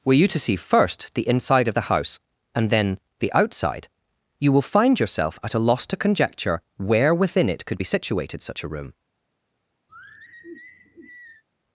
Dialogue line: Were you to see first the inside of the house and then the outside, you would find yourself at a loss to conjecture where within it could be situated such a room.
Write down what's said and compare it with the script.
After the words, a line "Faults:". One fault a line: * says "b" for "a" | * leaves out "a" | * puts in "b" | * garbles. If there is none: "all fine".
Were you to see first the inside of the house and then the outside, you will find yourself at a loss to conjecture where within it could be situated such a room.
Faults:
* says "will" for "would"